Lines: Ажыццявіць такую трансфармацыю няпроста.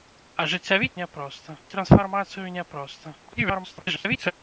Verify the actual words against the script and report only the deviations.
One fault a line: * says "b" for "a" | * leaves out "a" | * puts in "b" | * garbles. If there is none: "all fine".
* says "няпроста" for "такую"
* garbles